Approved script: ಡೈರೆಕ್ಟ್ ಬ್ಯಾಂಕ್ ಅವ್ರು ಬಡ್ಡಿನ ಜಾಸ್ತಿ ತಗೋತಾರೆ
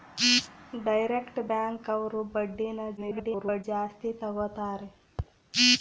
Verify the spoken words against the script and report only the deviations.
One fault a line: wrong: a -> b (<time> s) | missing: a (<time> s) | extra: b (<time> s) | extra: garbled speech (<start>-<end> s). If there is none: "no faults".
extra: garbled speech (3.0-3.6 s)